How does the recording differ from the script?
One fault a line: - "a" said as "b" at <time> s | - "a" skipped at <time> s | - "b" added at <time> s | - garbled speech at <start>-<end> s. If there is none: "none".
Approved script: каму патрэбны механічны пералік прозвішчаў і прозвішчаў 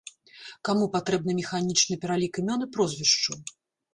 - "прозвішчаў" said as "імён" at 2.4 s